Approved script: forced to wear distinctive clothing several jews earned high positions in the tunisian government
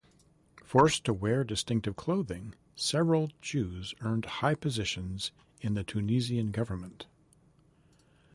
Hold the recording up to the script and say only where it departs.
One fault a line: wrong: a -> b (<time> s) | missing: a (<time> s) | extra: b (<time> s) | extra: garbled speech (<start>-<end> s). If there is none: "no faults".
no faults